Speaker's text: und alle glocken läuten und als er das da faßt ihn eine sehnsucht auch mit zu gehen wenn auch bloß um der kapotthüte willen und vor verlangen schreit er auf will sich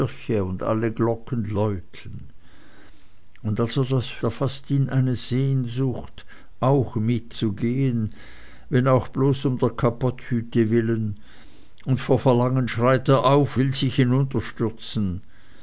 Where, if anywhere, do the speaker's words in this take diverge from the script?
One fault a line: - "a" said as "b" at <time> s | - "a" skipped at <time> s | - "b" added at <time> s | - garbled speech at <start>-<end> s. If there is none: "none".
none